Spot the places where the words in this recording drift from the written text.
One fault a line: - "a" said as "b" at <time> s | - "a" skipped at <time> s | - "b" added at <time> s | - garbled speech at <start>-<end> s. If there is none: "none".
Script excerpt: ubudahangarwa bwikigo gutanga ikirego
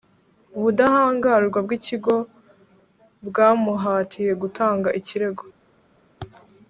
- "bwamuhatiye" added at 3.3 s